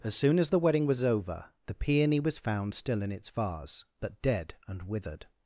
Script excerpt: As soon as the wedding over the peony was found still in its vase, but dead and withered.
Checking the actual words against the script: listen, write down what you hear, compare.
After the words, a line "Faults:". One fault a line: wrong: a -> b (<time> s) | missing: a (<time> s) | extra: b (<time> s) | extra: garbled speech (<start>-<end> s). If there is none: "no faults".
As soon as the wedding was over the peony was found still in its vase, but dead and withered.
Faults:
extra: was (0.9 s)